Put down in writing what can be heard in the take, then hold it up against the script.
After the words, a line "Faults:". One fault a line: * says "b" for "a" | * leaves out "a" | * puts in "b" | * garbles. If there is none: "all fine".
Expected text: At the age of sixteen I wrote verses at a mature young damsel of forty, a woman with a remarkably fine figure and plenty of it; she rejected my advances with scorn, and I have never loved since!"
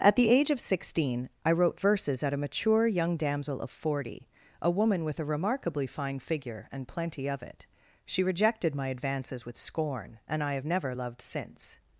At the age of sixteen I wrote verses at a mature young damsel of forty, a woman with a remarkably fine figure and plenty of it; she rejected my advances with scorn, and I have never loved since!"
Faults:
all fine